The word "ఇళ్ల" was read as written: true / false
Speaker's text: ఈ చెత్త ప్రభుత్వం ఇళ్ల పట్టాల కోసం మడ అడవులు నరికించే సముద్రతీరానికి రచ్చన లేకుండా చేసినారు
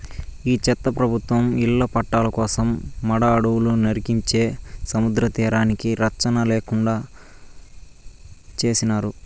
true